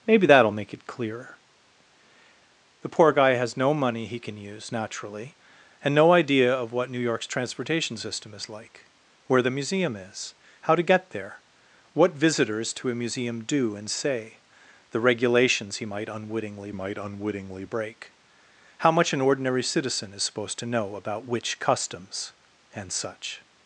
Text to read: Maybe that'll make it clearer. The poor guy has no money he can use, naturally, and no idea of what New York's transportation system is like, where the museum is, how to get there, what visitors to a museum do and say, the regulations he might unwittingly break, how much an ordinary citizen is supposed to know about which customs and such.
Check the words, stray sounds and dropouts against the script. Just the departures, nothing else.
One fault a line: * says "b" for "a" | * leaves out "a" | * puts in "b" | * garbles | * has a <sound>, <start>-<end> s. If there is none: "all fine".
* puts in "might unwittingly"